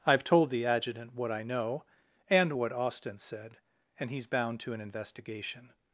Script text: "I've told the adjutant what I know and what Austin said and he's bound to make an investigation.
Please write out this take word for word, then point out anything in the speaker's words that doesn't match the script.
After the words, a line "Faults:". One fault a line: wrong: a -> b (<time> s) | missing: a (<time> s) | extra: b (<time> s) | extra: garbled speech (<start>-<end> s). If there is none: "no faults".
"I've told the adjutant what I know and what Austin said and he's bound to an investigation.
Faults:
missing: make (4.7 s)